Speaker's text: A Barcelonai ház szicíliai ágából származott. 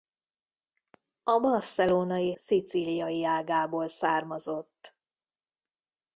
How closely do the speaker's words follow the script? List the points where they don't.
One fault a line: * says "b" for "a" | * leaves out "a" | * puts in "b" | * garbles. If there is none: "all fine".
* leaves out "ház"